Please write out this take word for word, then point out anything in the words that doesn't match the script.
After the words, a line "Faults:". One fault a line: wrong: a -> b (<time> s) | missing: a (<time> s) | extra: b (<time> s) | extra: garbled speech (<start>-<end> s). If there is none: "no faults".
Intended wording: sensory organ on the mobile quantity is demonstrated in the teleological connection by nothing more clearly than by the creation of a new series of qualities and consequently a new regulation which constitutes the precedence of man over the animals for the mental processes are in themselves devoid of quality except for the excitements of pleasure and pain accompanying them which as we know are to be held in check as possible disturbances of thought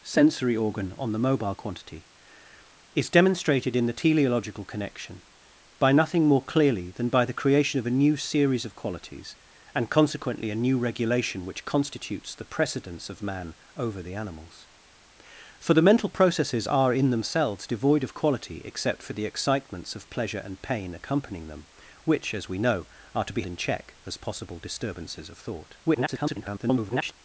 sensory organ on the mobile quantity is demonstrated in the teleological connection by nothing more clearly than by the creation of a new series of qualities and consequently a new regulation which constitutes the precedence of man over the animals for the mental processes are in themselves devoid of quality except for the excitements of pleasure and pain accompanying them which as we know are to be in check as possible disturbances of thought [garbled]
Faults:
missing: held (23.4 s)
extra: garbled speech (25.8-27.1 s)